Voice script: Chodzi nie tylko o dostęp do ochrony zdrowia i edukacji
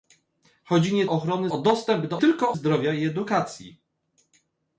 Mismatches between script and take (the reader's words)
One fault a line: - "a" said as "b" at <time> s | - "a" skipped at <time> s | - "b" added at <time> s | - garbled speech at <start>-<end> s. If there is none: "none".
- "tylko" said as "ochrony" at 1.1 s
- "ochrony" said as "tylko" at 2.2 s